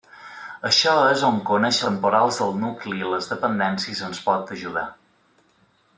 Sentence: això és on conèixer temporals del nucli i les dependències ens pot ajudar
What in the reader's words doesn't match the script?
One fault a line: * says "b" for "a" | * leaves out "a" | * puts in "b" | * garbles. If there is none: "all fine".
all fine